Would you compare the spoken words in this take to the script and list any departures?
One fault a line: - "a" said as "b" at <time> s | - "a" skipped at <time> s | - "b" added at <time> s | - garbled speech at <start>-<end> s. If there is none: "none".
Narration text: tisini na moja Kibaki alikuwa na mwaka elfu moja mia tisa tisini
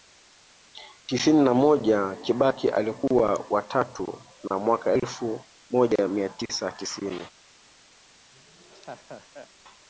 - "wa tatu" added at 3.5 s